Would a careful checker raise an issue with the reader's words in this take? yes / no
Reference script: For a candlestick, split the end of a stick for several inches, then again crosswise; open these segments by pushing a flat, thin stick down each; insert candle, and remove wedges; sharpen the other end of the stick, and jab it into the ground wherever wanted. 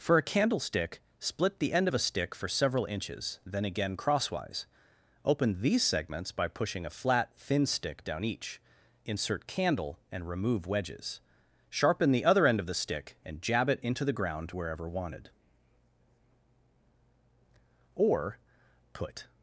yes